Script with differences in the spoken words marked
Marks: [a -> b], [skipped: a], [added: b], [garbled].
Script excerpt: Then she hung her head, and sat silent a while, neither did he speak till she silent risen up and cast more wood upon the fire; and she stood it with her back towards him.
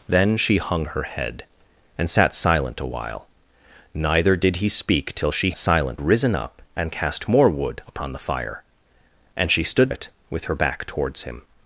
Then she hung her head, and sat silent a while, neither did he speak till she silent risen up and cast more wood upon the fire; and she stood it with her back towards him.